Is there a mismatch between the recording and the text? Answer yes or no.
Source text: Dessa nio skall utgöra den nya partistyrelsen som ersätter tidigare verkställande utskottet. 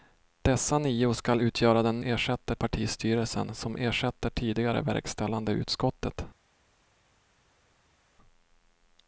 yes